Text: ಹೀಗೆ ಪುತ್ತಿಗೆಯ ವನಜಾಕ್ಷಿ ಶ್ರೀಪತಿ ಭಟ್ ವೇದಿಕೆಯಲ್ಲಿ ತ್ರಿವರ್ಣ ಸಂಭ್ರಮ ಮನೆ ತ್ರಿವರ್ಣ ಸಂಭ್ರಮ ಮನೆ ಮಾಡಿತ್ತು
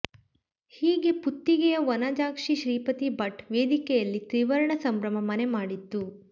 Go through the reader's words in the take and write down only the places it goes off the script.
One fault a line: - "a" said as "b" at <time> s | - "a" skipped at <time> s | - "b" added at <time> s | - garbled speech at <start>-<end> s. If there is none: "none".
- "ತ್ರಿವರ್ಣ ಸಂಭ್ರಮ ಮನೆ" skipped at 5.5 s